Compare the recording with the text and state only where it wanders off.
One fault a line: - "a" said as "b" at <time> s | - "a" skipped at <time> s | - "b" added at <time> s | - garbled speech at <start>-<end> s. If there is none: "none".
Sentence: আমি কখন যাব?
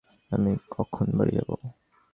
- "বাড়ি" added at 1.2 s